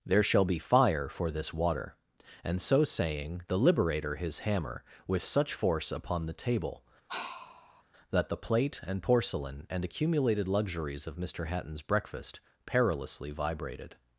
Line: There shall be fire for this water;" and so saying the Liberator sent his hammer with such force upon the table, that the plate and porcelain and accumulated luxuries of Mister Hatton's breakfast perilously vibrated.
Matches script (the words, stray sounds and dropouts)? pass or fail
fail